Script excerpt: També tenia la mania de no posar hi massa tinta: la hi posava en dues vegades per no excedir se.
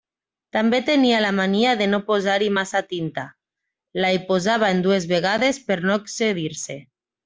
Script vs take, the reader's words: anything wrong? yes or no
no